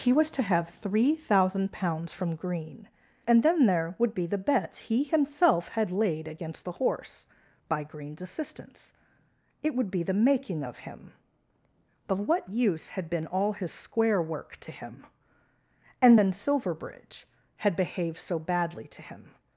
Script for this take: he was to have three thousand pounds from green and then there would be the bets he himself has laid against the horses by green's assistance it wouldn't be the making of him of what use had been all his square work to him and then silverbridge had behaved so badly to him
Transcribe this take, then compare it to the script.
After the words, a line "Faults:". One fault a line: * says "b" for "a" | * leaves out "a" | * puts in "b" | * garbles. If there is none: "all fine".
he was to have three thousand pounds from green and then there would be the bets he himself had laid against the horse by green's assistance it would be the making of him of what use had been all his square work to him and then silverbridge had behaved so badly to him
Faults:
* says "had" for "has"
* says "horse" for "horses"
* says "would" for "wouldn't"